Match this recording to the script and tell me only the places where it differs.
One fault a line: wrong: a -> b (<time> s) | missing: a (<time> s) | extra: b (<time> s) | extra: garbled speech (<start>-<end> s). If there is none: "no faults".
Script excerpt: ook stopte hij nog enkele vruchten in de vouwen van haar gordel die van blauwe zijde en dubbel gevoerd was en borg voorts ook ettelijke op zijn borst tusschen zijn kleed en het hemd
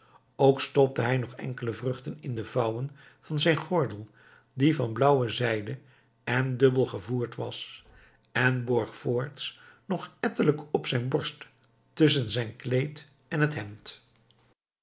wrong: haar -> zijn (3.4 s)
wrong: ook -> nog (9.9 s)